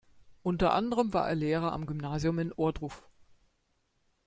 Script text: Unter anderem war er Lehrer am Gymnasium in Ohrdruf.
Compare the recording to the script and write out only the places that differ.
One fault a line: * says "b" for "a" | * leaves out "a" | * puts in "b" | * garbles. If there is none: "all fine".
all fine